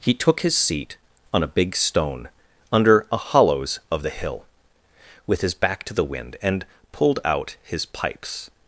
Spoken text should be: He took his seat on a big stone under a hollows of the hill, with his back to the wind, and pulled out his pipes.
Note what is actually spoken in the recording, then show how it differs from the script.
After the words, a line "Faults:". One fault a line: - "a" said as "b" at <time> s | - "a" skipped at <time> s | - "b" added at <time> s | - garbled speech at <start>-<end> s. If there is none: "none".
He took his seat on a big stone under a hollows of the hill, with his back to the wind, and pulled out his pipes.
Faults:
none